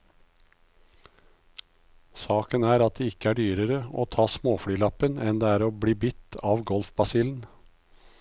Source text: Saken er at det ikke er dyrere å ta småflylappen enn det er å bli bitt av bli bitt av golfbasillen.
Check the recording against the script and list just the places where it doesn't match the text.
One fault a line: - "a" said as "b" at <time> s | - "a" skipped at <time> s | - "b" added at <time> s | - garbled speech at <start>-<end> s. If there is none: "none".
- "bli bitt av" skipped at 6.6 s